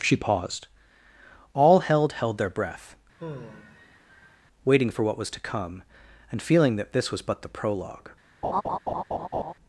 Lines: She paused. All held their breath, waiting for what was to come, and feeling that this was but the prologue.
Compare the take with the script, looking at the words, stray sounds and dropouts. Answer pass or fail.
fail